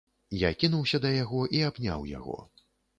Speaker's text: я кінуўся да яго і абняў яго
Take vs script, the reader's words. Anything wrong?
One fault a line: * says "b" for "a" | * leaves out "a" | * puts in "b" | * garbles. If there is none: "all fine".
all fine